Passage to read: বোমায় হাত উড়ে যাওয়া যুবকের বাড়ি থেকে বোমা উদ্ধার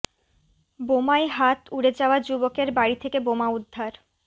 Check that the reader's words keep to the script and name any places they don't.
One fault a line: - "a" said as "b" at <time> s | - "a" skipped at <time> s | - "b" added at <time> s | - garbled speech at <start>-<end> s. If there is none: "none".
none